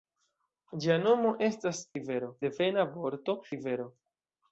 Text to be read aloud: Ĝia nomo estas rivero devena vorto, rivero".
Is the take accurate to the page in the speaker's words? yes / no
yes